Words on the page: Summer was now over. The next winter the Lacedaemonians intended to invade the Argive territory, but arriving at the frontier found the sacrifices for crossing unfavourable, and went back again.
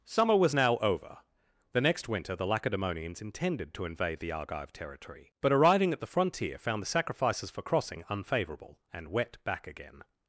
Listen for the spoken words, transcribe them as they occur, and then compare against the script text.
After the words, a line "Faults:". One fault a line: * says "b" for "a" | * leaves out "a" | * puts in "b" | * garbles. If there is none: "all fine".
Summer was now over. The next winter the Lacedaemonians intended to invade the Argive territory, but arriving at the frontier found the sacrifices for crossing unfavourable, and wet back again.
Faults:
* says "wet" for "went"